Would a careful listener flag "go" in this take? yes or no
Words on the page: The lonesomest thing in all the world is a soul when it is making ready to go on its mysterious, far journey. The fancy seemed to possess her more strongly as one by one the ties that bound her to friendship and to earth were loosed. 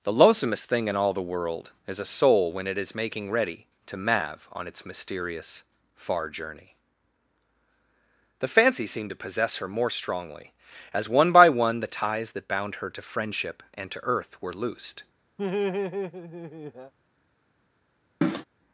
yes